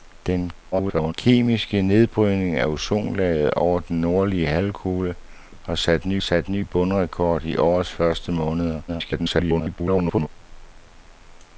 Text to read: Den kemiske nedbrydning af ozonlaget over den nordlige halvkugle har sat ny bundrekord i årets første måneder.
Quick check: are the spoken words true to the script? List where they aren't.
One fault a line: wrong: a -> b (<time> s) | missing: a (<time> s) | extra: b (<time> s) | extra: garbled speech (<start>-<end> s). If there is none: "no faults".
extra: garbled speech (0.7-1.1 s)
extra: sat ny (6.2 s)
extra: garbled speech (8.9-10.3 s)